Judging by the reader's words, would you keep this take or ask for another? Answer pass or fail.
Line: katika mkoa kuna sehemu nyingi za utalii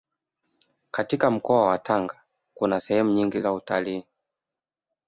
fail